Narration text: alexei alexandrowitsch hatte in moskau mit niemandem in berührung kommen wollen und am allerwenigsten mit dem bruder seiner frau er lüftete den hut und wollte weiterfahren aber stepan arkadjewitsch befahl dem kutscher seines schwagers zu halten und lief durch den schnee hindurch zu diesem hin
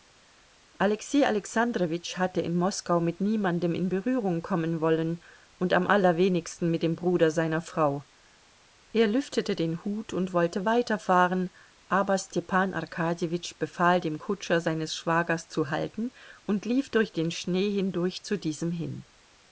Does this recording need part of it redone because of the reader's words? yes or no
no